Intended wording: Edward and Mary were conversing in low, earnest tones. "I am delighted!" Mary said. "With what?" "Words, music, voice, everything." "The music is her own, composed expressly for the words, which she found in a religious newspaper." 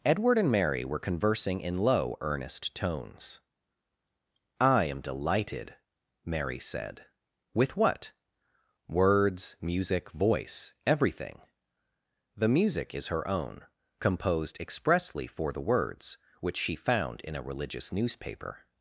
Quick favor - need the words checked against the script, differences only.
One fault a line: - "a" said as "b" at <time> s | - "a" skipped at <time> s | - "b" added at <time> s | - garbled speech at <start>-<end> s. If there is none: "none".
none